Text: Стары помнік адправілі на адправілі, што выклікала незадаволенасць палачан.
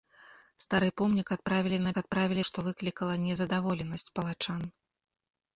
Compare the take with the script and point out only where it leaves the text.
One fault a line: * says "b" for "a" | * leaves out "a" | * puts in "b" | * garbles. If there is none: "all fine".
all fine